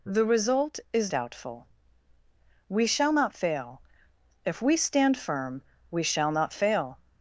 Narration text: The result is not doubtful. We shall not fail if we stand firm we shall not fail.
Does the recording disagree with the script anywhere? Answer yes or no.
yes